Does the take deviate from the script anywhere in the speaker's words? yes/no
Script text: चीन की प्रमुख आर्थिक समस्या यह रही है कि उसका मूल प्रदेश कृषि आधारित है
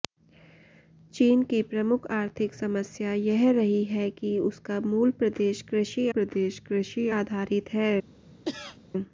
yes